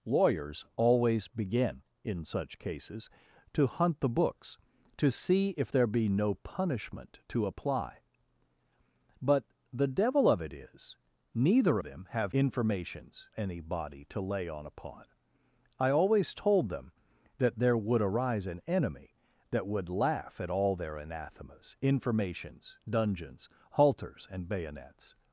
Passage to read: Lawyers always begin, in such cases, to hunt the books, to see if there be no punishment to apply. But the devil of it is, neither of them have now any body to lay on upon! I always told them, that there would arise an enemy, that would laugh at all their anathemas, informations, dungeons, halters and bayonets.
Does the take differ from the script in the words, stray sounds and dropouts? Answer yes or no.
yes